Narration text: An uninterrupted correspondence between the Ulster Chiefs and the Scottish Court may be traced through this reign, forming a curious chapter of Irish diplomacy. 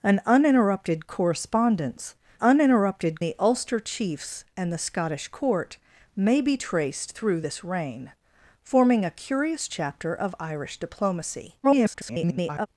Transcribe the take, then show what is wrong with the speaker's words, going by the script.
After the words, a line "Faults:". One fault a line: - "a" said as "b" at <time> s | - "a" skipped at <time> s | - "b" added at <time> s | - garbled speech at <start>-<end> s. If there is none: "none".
An uninterrupted correspondence uninterrupted the Ulster Chiefs and the Scottish Court may be traced through this reign, forming a curious chapter of Irish diplomacy. [garbled]
Faults:
- "between" said as "uninterrupted" at 2.4 s
- garbled speech at 11.6-12.7 s